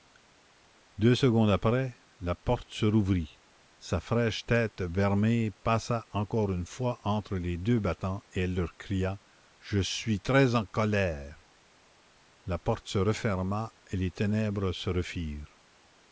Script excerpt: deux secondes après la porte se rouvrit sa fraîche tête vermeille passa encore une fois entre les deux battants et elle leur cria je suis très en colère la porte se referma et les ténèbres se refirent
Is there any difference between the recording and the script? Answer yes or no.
no